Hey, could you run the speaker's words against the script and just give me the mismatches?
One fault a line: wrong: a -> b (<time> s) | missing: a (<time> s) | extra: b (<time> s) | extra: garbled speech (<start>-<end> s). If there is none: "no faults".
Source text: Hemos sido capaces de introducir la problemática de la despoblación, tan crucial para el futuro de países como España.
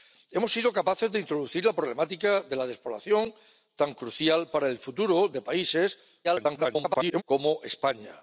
extra: garbled speech (6.2-7.2 s)